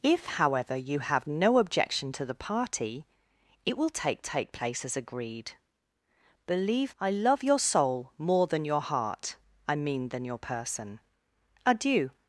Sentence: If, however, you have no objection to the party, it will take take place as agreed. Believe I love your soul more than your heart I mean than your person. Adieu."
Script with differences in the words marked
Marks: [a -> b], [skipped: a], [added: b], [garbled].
If, however, you have no objection to the party, it will take take place as agreed. Believe I love your soul more than your heart I mean than your person. Adieu."